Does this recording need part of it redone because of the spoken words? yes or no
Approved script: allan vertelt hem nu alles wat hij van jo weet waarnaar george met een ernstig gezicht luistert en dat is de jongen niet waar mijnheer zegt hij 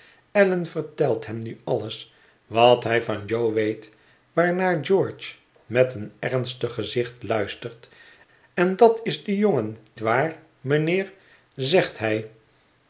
yes